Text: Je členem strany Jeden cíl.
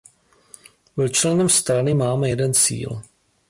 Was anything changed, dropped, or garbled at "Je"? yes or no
yes